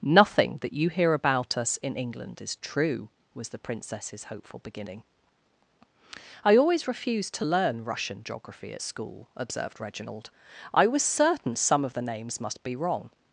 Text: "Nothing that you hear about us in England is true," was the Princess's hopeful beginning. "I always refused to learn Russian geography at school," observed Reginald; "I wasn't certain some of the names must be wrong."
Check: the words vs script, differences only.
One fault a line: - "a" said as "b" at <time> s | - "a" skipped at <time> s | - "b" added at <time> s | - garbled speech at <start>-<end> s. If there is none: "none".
- "wasn't" said as "was" at 10.9 s